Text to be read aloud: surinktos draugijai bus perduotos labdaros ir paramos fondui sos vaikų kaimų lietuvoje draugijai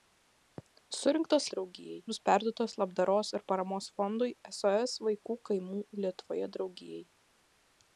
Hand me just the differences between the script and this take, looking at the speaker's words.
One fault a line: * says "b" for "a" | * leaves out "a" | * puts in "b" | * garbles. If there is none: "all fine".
all fine